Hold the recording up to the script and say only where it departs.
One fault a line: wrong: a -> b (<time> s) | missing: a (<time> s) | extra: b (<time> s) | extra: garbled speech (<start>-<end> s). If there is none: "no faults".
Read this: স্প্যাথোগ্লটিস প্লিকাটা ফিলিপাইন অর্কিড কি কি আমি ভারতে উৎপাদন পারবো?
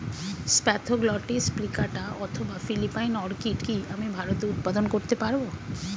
extra: অথবা (2.2 s)
missing: কি (3.8 s)
extra: করতে (4.9 s)